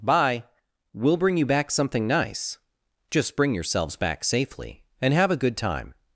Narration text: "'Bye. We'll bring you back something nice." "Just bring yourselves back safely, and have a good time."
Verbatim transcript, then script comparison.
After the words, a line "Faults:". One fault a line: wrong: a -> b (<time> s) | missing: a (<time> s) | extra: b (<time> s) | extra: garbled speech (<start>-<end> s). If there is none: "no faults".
"'Bye. We'll bring you back something nice." "Just bring yourselves back safely, and have a good time."
Faults:
no faults